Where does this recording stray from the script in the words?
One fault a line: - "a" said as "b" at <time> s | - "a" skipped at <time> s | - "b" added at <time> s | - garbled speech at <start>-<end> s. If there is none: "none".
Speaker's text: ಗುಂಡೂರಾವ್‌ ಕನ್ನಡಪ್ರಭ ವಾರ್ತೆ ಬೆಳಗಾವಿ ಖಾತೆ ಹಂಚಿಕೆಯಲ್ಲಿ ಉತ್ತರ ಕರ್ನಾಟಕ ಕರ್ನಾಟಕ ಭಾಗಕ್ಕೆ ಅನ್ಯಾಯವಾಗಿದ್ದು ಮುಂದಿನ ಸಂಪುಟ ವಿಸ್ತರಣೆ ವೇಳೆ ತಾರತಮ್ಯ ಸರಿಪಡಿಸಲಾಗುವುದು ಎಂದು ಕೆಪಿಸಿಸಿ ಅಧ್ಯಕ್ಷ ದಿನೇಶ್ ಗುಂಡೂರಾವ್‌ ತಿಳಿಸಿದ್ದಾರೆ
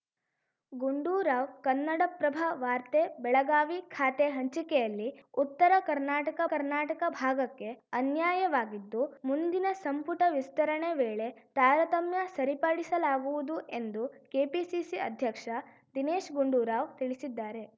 none